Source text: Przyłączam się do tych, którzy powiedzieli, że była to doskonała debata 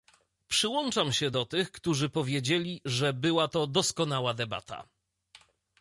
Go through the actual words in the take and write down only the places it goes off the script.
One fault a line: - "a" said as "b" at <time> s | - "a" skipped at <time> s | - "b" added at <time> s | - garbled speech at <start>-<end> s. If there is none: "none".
none